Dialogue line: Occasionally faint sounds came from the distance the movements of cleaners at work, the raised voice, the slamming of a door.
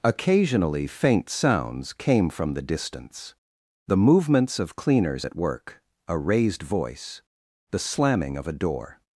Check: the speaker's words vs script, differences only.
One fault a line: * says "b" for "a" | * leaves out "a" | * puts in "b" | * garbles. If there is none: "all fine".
* says "a" for "the"